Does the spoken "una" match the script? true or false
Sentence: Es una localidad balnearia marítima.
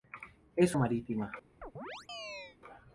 false